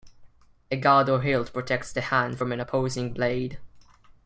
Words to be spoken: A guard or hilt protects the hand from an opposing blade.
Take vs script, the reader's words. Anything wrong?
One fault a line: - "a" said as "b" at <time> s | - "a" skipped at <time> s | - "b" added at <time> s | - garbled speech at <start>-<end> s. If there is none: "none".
none